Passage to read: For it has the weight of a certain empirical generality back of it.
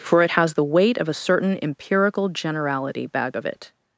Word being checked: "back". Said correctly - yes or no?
no